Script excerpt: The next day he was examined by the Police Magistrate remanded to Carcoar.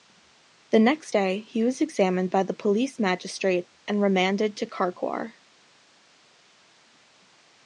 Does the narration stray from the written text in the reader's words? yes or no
yes